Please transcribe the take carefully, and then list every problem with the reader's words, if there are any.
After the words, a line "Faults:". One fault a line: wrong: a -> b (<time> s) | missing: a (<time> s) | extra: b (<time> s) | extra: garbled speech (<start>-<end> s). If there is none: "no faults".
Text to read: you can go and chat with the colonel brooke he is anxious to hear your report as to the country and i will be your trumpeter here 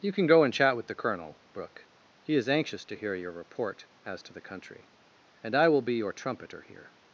you can go and chat with the colonel brooke he is anxious to hear your report as to the country and i will be your trumpeter here
Faults:
no faults